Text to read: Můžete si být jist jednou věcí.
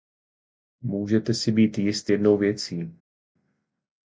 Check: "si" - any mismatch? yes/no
no